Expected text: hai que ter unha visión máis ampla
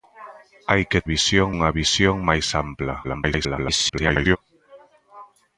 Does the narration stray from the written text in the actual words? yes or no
yes